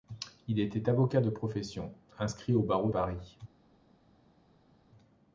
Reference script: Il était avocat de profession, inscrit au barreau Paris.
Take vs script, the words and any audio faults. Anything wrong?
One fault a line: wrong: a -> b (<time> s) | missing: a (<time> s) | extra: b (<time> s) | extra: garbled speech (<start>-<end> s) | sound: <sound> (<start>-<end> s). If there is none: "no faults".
no faults